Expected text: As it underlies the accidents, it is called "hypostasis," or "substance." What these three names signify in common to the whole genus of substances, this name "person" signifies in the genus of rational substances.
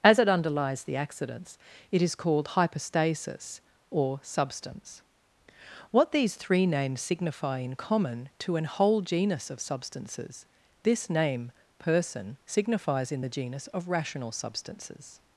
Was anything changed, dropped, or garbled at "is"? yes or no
no